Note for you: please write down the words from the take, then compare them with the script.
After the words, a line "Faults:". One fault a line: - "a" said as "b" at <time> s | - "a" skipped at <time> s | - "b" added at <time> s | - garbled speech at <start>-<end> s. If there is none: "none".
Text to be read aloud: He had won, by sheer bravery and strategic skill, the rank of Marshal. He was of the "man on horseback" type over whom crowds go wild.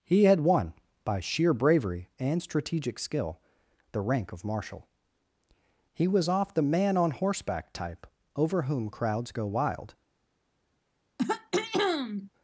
He had won, by sheer bravery and strategic skill, the rank of Marshal. He was off the "man on horseback" type over whom crowds go wild.
Faults:
- "of" said as "off" at 6.3 s